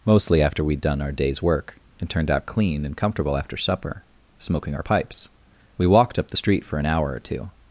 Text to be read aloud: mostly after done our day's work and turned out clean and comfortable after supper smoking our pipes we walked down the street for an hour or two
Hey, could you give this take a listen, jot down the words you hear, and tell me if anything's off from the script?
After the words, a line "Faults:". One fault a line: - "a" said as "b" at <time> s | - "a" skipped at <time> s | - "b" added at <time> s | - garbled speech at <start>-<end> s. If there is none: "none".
mostly after we'd done our day's work and turned out clean and comfortable after supper smoking our pipes we walked up the street for an hour or two
Faults:
- "we'd" added at 0.6 s
- "down" said as "up" at 6.2 s